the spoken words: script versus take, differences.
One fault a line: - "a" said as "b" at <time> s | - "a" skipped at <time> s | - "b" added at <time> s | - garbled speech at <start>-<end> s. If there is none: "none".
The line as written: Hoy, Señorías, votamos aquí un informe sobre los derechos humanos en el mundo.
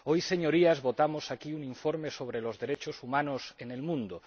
none